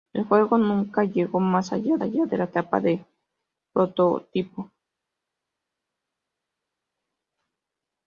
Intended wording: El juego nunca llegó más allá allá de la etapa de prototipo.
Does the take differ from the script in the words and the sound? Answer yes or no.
no